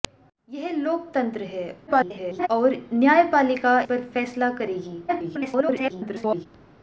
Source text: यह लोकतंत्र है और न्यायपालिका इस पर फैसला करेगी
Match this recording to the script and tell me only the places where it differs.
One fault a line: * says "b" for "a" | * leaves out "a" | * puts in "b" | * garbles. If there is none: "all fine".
* garbles
* leaves out "इस"
* garbles